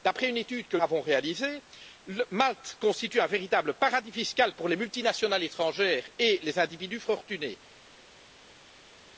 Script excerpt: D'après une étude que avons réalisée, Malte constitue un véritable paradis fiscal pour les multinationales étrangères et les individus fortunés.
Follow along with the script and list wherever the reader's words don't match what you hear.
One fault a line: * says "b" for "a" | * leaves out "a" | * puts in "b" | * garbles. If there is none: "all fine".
all fine